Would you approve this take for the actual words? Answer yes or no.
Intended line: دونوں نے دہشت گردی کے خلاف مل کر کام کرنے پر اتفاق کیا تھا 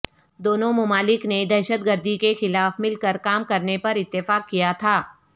no